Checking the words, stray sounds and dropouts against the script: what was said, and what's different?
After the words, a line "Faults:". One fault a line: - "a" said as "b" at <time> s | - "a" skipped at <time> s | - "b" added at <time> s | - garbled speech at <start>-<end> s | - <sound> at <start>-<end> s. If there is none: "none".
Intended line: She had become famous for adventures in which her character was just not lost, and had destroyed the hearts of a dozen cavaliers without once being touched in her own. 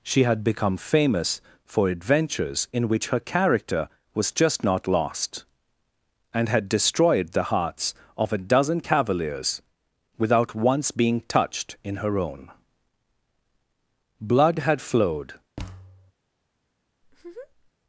She had become famous for adventures in which her character was just not lost, and had destroyed the hearts of a dozen cavaliers without once being touched in her own. Blood had flowed
Faults:
- "Blood had flowed" added at 14.2 s
- thud at 15.6-16.1 s
- laugh at 17.0-17.7 s